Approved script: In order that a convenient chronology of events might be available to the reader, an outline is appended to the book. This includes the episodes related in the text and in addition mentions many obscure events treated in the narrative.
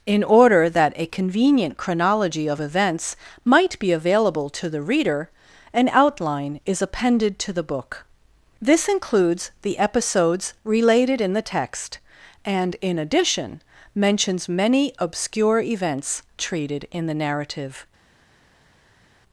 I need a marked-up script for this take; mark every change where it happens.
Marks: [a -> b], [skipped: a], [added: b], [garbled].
In order that a convenient chronology of events might be available to the reader, an outline is appended to the book. This includes the episodes related in the text and in addition mentions many obscure events treated in the narrative.